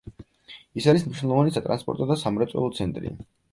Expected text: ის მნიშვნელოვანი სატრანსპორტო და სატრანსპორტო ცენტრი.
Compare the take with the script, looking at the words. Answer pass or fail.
fail